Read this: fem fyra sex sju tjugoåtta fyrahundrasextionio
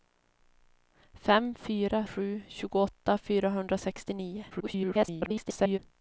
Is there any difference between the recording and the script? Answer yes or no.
yes